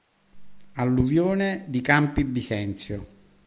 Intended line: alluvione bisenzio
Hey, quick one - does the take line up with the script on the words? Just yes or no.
no